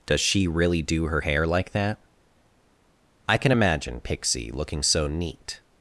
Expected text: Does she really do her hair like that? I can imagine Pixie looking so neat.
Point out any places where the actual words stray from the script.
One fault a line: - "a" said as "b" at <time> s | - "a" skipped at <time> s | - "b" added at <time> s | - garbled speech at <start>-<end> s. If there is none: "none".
none